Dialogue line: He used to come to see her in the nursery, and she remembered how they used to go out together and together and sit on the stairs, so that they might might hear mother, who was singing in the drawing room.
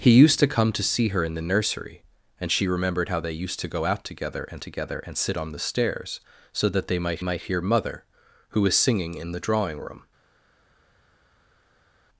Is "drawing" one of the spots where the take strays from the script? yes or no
no